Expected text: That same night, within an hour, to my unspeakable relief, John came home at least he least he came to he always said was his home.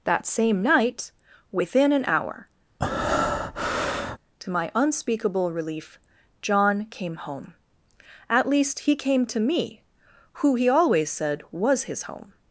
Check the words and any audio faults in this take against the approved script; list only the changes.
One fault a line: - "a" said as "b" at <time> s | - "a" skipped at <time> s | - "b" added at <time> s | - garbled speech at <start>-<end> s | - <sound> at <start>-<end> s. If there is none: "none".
- breath at 2.8-4.2 s
- "least he came to" said as "came to me who" at 9.0 s